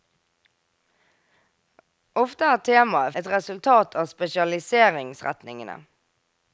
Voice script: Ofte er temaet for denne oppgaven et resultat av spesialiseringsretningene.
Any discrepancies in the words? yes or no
yes